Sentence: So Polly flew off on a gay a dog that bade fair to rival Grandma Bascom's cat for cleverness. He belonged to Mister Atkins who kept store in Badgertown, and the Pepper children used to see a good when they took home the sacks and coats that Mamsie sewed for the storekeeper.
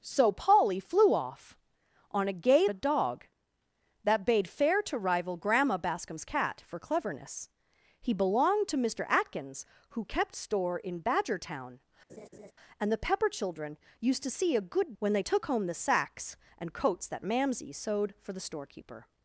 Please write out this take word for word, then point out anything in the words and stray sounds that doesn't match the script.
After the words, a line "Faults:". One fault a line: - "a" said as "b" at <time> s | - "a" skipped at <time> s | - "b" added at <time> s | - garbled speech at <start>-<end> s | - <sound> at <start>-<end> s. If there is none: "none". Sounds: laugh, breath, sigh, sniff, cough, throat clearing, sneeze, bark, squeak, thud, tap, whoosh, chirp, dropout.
So Polly flew off on a gay a dog that bade fair to rival Grandma Bascom's cat for cleverness. He belonged to Mister Atkins who kept store in Badgertown, and the Pepper children used to see a good when they took home the sacks and coats that Mamsie sewed for the storekeeper.
Faults:
- laugh at 12.1-12.5 s